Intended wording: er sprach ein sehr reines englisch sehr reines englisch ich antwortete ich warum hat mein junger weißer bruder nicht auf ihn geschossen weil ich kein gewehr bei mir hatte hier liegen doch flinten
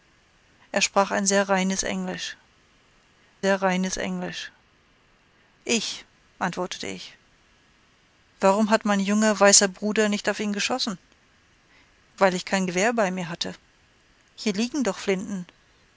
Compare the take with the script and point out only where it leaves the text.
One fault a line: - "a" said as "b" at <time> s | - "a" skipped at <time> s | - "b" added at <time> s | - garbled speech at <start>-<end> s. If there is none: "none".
none